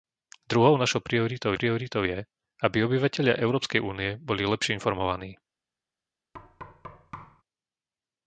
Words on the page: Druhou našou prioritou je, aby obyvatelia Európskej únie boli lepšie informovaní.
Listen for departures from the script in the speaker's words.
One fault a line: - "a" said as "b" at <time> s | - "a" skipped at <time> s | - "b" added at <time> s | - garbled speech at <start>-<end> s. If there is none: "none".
- "prioritou" added at 1.6 s